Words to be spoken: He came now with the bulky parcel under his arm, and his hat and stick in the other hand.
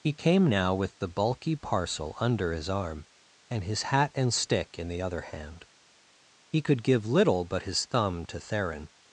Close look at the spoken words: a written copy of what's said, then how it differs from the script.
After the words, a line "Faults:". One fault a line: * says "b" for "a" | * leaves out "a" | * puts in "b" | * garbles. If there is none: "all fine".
He came now with the bulky parcel under his arm, and his hat and stick in the other hand. He could give little but his thumb to Theron
Faults:
* puts in "He could give little but his thumb to Theron"